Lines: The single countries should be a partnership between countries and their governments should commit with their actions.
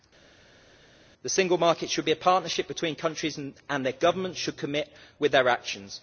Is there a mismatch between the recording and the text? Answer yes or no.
yes